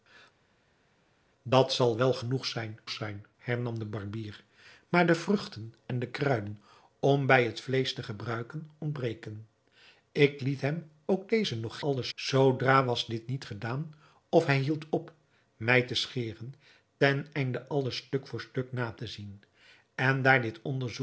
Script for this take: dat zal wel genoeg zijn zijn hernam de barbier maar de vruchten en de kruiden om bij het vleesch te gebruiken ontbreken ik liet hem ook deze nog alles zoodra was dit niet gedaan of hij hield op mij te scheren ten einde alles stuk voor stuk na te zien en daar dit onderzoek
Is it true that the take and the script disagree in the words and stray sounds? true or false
false